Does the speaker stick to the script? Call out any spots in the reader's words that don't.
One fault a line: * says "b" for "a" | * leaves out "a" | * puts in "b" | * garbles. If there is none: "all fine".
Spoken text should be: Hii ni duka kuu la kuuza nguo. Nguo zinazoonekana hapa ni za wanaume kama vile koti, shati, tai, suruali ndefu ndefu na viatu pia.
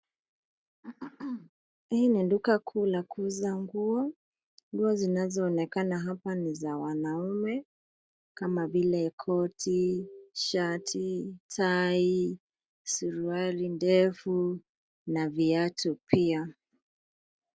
* leaves out "ndefu"